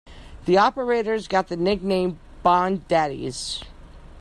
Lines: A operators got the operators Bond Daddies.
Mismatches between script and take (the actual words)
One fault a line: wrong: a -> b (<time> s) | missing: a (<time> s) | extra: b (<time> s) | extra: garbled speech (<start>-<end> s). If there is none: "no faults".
wrong: A -> The (0.5 s)
wrong: operators -> nickname (1.6 s)